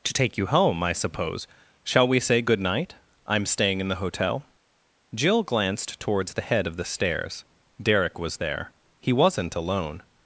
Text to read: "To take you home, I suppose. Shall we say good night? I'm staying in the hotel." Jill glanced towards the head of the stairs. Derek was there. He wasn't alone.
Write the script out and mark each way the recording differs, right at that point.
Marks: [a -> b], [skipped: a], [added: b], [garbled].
"To take you home, I suppose. Shall we say good night? I'm staying in the hotel." Jill glanced towards the head of the stairs. Derek was there. He wasn't alone.